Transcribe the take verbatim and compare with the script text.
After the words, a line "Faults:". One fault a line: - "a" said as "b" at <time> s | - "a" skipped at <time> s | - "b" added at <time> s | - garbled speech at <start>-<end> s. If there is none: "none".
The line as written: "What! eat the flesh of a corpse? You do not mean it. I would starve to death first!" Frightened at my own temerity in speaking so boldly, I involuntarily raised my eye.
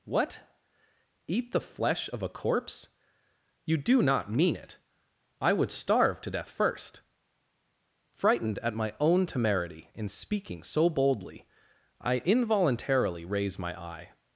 "What! eat the flesh of a corpse? You do not mean it. I would starve to death first!" Frightened at my own temerity in speaking so boldly, I involuntarily raise my eye.
Faults:
- "raised" said as "raise" at 13.2 s